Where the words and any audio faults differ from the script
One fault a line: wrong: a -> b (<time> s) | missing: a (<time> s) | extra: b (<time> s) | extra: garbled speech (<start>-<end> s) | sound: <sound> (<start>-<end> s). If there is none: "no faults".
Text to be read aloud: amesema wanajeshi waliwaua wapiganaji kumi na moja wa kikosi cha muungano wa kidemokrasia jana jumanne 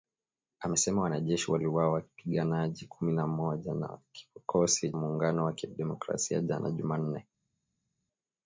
missing: cha (4.9 s)